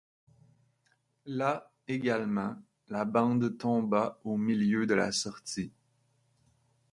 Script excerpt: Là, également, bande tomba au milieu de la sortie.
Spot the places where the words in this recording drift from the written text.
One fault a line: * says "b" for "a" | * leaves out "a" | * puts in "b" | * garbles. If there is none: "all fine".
* puts in "la"